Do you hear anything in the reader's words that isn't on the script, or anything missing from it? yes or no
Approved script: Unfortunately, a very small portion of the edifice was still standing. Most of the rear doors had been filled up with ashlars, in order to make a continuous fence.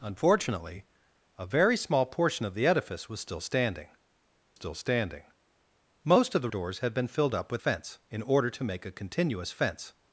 yes